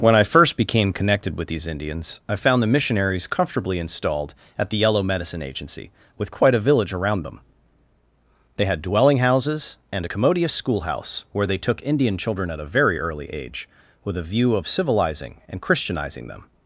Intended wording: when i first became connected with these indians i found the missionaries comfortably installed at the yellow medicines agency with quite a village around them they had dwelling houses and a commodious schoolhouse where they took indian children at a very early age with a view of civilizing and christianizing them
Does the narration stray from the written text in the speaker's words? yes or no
yes